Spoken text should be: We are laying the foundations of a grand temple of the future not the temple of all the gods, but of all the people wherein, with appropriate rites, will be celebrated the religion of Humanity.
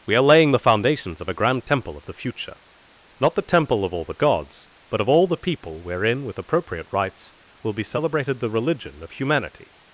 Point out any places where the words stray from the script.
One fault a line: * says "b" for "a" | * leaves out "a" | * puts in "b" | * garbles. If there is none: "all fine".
all fine